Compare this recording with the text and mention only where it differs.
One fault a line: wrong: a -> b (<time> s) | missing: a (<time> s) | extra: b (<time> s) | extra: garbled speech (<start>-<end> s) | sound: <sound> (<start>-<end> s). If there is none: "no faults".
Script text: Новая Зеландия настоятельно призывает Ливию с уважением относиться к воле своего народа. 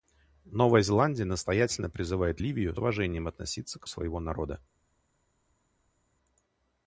missing: с (2.8 s)
missing: воле (3.9 s)